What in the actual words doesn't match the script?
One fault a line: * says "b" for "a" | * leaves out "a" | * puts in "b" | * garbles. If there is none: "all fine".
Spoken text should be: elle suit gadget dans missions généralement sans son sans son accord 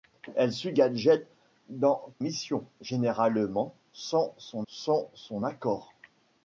all fine